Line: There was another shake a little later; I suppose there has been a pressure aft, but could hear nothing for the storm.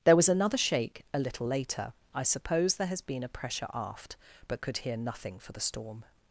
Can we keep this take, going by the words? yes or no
yes